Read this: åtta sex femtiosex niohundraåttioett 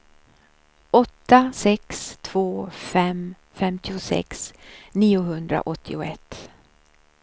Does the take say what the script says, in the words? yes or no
no